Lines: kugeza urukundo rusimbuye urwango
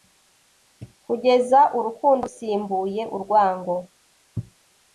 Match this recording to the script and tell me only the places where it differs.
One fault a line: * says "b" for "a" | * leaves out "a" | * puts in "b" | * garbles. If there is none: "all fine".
all fine